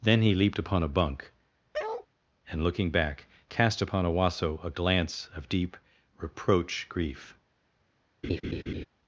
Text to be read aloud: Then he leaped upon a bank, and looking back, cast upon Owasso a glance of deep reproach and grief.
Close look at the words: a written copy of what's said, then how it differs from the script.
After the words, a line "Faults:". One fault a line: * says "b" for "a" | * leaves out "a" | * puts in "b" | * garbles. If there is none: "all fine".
Then he leaped upon a bunk, and looking back, cast upon Owasso a glance of deep reproach grief.
Faults:
* says "bunk" for "bank"
* leaves out "and"